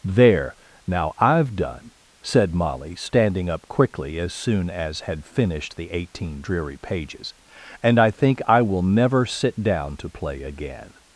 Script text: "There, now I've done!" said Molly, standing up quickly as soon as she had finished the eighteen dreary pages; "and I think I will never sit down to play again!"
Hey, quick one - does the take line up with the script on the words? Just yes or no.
no